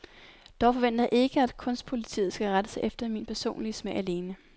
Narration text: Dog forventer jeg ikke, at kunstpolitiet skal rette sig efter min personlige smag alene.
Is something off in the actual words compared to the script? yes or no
no